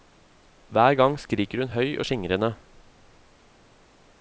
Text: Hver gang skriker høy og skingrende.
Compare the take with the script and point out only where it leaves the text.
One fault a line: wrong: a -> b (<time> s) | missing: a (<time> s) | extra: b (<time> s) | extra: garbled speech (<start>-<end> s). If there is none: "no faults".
extra: hun (1.6 s)